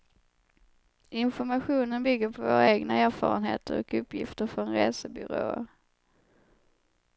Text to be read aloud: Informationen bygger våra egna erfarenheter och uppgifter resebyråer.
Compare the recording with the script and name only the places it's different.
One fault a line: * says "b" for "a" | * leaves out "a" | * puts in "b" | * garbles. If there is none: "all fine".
* puts in "på"
* puts in "från"